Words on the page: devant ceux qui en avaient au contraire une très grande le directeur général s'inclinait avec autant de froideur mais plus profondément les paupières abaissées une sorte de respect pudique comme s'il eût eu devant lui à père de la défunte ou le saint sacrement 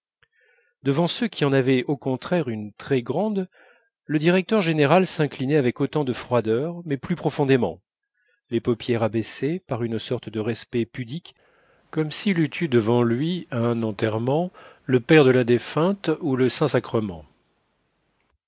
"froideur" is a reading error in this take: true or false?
false